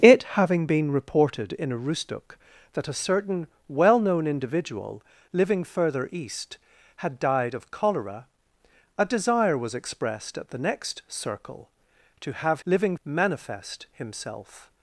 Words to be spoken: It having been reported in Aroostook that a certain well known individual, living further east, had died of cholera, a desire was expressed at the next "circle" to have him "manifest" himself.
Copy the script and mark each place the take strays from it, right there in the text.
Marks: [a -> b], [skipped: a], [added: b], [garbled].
It having been reported in Aroostook that a certain well known individual, living further east, had died of cholera, a desire was expressed at the next "circle" to have [him -> living] "manifest" himself.